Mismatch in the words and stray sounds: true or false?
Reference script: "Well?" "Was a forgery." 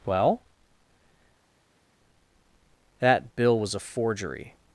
true